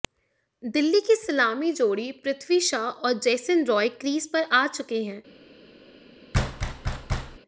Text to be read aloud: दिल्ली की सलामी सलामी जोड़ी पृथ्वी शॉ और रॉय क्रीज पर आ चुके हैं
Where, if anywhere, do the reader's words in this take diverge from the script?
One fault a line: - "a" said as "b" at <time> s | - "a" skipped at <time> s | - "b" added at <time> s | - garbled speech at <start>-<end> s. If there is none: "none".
- "सलामी" skipped at 1.7 s
- "जेसन" added at 3.2 s